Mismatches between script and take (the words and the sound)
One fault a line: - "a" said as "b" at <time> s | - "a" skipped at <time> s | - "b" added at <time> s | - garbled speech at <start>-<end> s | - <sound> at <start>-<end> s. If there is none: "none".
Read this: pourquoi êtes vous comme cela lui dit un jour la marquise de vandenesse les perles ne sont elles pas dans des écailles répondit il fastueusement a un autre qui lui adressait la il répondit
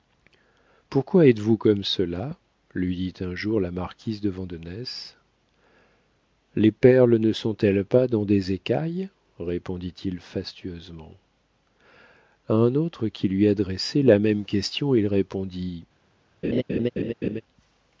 - "même question" added at 14.2 s
- laugh at 16.4-17.4 s